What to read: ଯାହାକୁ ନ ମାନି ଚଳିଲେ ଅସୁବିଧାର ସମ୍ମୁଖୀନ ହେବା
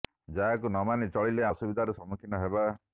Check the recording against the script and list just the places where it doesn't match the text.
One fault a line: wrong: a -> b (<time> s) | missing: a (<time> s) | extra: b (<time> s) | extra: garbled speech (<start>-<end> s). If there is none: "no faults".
no faults